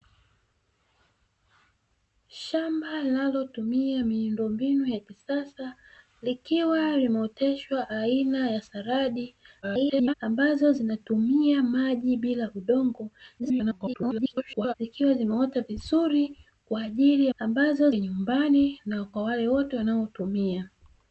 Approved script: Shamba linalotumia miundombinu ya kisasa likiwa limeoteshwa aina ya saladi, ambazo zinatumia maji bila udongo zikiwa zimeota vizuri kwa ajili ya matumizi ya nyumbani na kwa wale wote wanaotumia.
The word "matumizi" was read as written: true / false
false